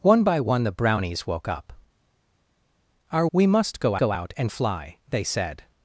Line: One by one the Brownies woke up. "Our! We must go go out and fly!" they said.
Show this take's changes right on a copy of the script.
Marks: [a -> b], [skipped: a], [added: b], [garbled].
One by one the Brownies woke up. "Our! We must go go out and fly!" they said.